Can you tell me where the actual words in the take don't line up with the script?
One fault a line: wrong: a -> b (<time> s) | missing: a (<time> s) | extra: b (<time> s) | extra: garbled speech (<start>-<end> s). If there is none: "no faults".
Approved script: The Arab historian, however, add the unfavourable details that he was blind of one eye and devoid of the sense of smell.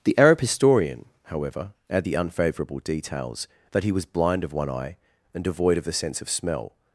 no faults